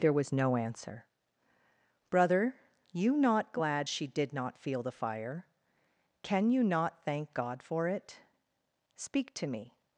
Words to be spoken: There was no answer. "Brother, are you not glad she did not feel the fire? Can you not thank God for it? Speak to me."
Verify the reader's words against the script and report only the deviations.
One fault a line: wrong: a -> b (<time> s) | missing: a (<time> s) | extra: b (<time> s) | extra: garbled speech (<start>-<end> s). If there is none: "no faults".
missing: are (2.5 s)